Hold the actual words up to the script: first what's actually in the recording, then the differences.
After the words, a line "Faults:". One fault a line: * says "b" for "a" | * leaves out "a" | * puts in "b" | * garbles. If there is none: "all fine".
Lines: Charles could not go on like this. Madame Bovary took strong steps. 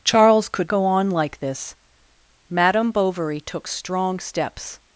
Charles could go on like this. Madame Bovary took strong steps.
Faults:
* leaves out "not"